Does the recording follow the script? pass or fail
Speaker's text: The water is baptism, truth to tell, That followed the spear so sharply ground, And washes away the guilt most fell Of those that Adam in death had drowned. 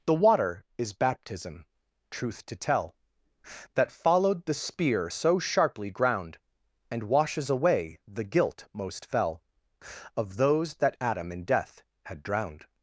pass